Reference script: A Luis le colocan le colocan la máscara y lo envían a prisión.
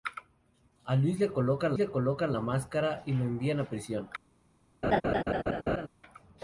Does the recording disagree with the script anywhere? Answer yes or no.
no